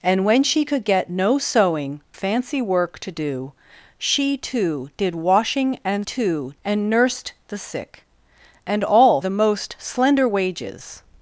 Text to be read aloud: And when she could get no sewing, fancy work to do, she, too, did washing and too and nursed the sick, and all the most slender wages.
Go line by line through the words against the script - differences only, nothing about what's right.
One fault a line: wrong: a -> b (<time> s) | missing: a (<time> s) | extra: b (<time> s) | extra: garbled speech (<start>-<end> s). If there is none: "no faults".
no faults